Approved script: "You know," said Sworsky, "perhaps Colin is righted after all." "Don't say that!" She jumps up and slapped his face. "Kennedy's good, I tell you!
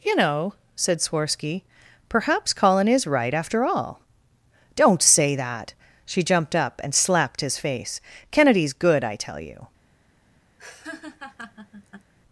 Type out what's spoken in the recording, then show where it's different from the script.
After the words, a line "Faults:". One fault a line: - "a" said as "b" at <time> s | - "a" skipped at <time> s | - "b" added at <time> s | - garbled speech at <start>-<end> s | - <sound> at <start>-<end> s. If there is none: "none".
"You know," said Sworsky, "perhaps Colin is right after all." "Don't say that!" She jumped up and slapped his face. "Kennedy's good, I tell you!
Faults:
- "righted" said as "right" at 3.0 s
- "jumps" said as "jumped" at 6.2 s
- laugh at 10.6-12.1 s